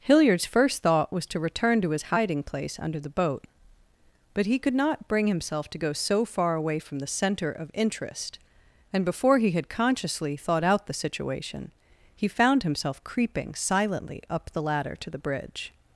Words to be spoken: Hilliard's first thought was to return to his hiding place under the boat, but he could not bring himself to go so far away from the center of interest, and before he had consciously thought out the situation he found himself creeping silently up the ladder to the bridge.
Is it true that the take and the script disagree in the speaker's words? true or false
false